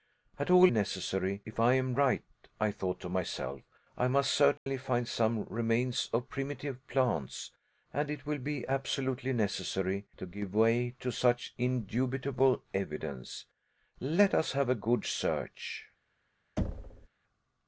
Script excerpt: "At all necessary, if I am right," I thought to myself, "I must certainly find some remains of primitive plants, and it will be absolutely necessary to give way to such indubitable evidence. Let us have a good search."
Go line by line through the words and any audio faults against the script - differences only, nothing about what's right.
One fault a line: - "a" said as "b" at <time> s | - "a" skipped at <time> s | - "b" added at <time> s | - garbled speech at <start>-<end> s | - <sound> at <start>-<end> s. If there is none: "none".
- dropout at 4.6-4.7 s
- thud at 16.6-17.1 s